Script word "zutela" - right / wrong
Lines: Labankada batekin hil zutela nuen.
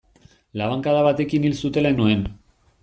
right